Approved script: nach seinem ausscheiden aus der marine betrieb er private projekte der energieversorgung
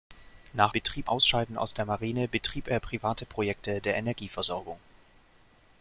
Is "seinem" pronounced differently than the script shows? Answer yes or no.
yes